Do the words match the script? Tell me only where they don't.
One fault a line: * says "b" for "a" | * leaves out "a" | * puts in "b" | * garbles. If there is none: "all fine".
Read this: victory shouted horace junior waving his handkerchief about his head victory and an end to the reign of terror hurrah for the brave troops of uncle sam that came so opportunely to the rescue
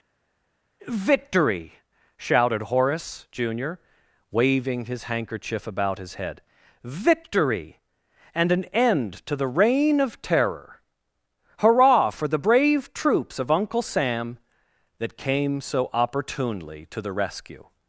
all fine